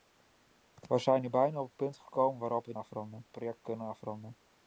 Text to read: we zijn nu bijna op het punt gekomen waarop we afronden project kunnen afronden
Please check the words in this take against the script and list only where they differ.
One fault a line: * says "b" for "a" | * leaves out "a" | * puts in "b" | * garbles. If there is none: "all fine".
all fine